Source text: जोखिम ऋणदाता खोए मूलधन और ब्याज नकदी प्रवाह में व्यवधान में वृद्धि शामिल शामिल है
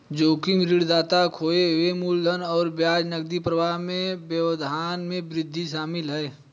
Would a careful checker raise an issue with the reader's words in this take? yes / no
yes